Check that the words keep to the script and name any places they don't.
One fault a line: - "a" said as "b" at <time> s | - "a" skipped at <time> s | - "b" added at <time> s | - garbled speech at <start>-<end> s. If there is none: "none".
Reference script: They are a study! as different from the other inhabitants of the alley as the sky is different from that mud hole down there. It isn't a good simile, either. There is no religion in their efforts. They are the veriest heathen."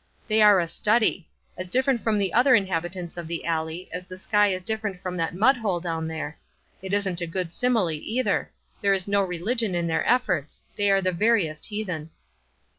none